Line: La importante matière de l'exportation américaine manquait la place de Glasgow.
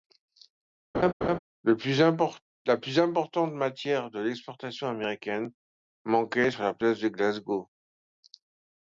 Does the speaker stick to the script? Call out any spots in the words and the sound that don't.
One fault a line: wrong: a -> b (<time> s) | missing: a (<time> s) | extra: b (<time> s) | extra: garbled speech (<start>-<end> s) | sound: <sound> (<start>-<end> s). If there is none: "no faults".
sound: laugh (0.9-1.4 s)
extra: plus (1.7 s)
extra: sur (6.5 s)